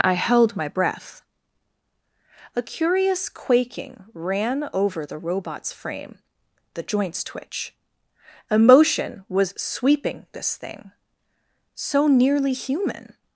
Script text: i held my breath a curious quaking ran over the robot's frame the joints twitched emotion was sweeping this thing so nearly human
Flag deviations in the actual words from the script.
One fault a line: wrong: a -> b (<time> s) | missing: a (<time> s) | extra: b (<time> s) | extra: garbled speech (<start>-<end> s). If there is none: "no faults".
wrong: twitched -> twitch (7.2 s)